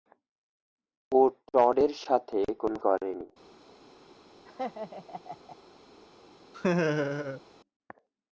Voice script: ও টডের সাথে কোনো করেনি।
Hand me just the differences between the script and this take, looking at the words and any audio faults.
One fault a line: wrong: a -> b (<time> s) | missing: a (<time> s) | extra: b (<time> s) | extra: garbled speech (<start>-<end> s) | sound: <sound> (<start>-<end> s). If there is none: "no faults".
sound: laugh (4.5-5.6 s)
sound: laugh (6.5-7.4 s)